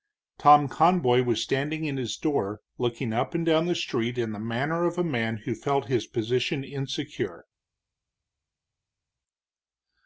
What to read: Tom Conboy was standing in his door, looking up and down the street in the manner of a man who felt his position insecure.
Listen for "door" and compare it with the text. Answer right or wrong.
right